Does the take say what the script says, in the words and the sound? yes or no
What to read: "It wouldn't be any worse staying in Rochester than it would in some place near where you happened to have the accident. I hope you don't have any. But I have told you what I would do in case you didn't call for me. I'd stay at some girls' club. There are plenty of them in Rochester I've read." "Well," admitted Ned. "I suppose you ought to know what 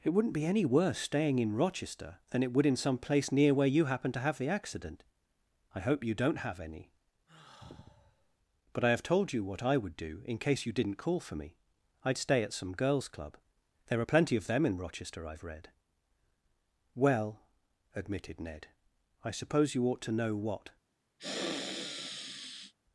no